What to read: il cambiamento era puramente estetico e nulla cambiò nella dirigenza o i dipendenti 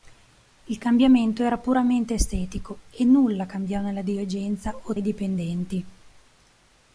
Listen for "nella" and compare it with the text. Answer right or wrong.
right